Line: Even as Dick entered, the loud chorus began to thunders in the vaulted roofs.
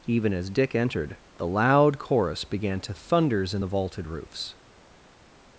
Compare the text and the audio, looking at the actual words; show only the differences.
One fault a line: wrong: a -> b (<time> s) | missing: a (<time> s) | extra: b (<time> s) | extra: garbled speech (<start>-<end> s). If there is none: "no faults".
no faults